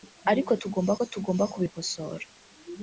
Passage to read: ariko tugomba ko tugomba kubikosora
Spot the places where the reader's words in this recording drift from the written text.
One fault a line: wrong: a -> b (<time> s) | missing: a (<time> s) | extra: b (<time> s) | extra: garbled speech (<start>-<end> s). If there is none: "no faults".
no faults